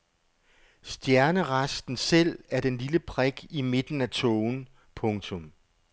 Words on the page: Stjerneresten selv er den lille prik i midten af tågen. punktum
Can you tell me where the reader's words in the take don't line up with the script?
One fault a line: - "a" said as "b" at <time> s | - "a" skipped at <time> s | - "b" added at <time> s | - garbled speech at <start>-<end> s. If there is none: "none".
none